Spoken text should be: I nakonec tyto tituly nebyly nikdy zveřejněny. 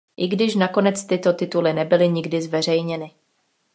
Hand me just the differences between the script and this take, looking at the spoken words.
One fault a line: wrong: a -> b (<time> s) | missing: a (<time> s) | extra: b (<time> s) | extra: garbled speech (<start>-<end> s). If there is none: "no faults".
extra: když (0.3 s)